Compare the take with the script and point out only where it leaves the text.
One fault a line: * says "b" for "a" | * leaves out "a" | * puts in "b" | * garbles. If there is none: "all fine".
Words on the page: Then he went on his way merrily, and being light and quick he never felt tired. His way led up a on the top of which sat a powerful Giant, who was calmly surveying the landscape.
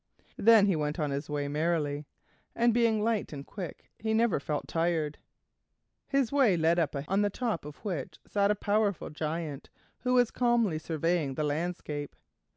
all fine